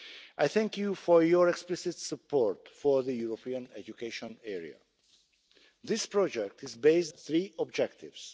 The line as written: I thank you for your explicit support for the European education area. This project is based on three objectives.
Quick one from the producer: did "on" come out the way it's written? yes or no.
no